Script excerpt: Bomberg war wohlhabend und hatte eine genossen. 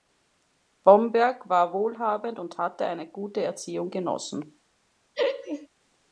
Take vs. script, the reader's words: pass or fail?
fail